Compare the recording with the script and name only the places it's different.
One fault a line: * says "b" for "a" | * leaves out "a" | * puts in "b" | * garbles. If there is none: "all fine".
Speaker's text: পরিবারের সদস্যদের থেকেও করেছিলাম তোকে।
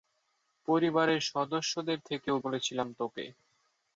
all fine